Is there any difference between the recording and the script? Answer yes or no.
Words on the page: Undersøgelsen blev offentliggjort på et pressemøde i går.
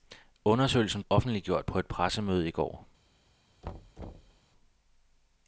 yes